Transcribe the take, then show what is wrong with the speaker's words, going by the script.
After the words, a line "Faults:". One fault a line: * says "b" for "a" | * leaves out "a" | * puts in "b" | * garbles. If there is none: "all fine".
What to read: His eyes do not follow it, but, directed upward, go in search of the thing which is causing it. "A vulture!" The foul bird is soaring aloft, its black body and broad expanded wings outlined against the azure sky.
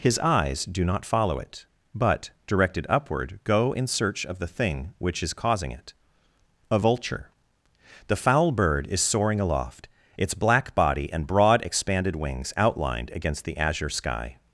His eyes do not follow it, but, directed upward, go in search of the thing which is causing it. "A vulture!" The foul bird is soaring aloft, its black body and broad expanded wings outlined against the azure sky.
Faults:
all fine